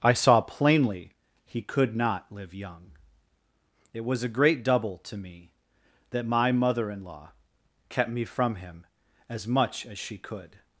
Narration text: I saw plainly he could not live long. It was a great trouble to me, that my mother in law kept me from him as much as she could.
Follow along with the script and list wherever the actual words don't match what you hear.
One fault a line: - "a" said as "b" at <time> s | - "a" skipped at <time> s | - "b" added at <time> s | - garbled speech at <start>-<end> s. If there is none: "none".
- "long" said as "young" at 2.5 s
- "trouble" said as "double" at 4.6 s